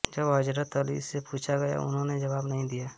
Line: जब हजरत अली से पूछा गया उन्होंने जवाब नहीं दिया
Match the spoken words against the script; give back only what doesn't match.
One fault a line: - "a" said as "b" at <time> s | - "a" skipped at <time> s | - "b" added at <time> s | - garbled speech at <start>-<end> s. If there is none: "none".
none